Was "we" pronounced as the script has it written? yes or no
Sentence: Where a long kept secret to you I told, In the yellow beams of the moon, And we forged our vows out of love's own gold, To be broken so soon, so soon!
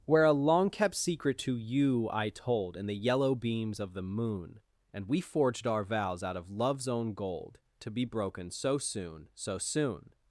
yes